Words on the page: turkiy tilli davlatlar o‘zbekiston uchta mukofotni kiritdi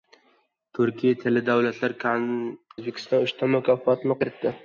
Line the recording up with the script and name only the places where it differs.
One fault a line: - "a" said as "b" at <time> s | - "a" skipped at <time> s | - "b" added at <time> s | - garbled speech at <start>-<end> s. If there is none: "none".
none